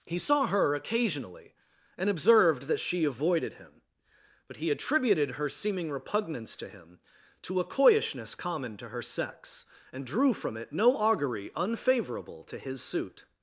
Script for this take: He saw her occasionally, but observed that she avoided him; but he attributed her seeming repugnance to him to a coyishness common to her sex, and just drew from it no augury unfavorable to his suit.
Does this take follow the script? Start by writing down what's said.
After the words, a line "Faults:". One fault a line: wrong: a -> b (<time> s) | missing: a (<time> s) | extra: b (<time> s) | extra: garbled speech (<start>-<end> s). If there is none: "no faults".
He saw her occasionally, and observed that she avoided him; but he attributed her seeming repugnance to him to a coyishness common to her sex, and drew from it no augury unfavorable to his suit.
Faults:
wrong: but -> and (2.0 s)
missing: just (10.1 s)